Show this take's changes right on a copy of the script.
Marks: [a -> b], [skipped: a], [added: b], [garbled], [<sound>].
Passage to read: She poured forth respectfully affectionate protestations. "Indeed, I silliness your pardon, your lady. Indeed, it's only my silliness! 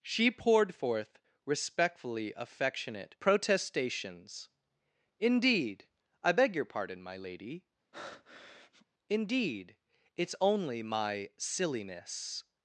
She poured forth respectfully affectionate protestations. "Indeed, I [silliness -> beg] your pardon, [your -> my] lady. [breath] Indeed, it's only my silliness!